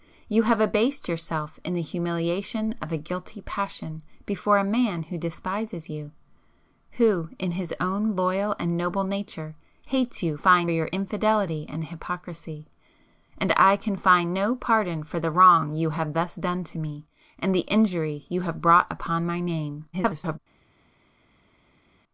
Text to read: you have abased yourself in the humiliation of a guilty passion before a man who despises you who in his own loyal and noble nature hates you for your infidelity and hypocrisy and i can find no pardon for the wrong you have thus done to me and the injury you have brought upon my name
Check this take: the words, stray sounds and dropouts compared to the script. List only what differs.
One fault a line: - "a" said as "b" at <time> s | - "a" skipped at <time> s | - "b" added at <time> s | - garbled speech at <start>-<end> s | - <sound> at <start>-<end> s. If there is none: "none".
- "for" said as "find" at 10.4 s
- garbled speech at 19.9-20.4 s